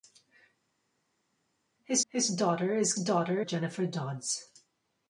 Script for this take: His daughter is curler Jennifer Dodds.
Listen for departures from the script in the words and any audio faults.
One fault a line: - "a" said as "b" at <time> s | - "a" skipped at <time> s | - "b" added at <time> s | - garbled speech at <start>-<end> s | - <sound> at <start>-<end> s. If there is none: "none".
- "his" added at 2.1 s
- "curler" said as "daughter" at 3.0 s